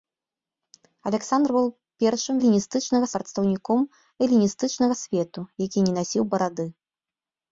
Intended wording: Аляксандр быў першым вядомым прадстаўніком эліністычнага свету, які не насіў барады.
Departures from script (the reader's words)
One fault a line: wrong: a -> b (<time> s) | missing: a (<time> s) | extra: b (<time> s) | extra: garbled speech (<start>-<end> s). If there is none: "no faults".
wrong: вядомым -> эліністычнага (2.4 s)